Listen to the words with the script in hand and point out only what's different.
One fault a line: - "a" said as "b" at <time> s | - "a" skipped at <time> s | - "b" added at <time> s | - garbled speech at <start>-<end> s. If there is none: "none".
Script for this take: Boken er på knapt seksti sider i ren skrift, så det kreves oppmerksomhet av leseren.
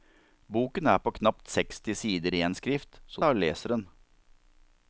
- "i" skipped at 2.4 s
- "det kreves oppmerksomhet" skipped at 3.2 s